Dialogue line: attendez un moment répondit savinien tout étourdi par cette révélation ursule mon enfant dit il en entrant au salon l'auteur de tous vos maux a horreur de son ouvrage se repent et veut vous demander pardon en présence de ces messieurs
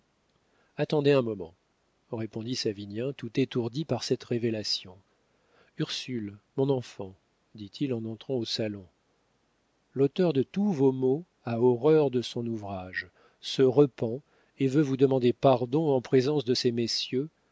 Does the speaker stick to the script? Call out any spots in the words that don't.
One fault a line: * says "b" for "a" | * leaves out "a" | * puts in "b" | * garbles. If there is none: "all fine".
all fine